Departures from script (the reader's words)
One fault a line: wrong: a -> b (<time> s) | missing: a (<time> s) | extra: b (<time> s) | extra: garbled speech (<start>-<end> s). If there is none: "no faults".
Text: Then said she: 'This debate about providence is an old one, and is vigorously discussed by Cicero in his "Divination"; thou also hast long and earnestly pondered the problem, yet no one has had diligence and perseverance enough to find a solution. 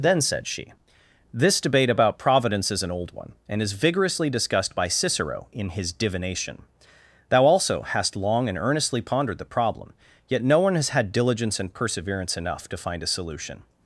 no faults